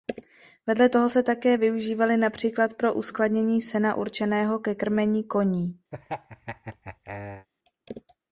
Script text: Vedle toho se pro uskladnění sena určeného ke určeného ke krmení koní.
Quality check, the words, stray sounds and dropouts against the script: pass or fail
fail